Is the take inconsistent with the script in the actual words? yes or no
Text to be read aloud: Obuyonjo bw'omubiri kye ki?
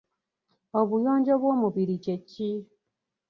no